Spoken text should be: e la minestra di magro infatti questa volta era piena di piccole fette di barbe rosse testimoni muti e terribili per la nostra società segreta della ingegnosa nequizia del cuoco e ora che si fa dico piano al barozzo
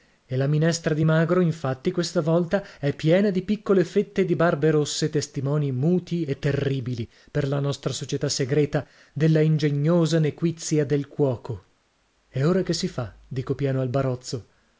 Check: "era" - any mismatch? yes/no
yes